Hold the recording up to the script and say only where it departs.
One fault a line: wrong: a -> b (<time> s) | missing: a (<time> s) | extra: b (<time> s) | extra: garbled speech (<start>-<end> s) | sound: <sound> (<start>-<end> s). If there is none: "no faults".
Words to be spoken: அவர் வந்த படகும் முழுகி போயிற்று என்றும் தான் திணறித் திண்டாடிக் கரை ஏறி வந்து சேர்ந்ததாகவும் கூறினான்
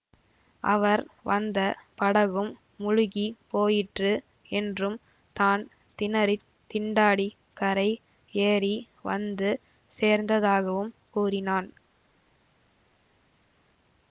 no faults